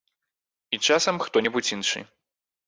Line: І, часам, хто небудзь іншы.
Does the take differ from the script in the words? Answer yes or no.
no